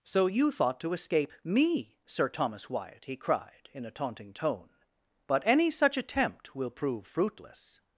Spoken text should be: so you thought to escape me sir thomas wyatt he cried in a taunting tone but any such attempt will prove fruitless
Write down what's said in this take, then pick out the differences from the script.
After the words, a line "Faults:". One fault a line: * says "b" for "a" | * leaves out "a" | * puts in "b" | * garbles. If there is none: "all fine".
so you thought to escape me sir thomas wyatt he cried in a taunting tone but any such attempt will prove fruitless
Faults:
all fine